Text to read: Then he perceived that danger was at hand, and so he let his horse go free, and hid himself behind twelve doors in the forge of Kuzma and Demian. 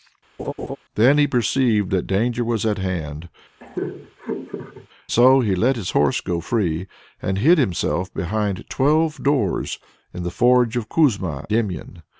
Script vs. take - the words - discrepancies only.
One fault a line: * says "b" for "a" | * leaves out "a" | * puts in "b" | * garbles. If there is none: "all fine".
* leaves out "and"
* leaves out "and"